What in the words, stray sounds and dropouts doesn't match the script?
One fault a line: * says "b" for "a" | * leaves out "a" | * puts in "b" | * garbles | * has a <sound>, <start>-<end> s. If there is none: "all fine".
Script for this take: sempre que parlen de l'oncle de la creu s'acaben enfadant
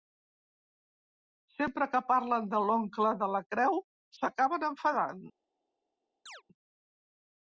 * has a chirp, 6.3-6.4 s